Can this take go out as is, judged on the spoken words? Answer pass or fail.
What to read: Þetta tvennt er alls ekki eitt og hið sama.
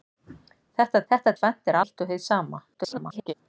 fail